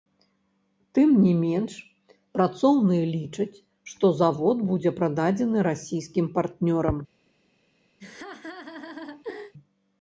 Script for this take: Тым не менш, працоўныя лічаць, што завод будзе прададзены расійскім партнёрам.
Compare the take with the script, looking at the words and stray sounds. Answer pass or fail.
fail